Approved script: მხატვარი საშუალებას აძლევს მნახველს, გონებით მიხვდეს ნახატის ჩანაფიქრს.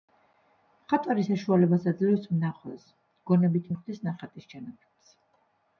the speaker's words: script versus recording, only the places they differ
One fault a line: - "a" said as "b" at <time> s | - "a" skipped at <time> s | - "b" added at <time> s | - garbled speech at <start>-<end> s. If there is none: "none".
none